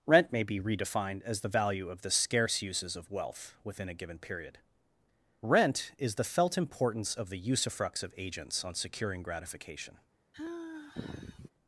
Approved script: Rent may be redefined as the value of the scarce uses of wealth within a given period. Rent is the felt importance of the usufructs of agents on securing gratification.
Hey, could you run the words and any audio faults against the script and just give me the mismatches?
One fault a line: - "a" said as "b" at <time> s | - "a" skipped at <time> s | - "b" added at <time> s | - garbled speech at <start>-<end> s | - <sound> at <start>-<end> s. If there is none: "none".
- sigh at 10.3-11.5 s